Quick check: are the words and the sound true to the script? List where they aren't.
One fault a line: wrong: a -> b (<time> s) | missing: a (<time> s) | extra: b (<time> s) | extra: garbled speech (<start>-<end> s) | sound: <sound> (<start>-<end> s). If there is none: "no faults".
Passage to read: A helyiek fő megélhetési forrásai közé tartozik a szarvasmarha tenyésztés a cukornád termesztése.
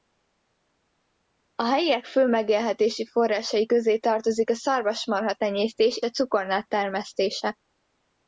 no faults